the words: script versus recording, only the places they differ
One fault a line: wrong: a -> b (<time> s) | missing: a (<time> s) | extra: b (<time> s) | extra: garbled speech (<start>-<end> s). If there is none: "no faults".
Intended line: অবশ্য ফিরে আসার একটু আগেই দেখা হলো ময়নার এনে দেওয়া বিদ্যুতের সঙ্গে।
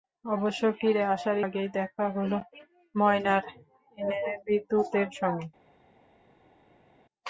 missing: একটু (1.4 s)
missing: দেওয়া (4.2 s)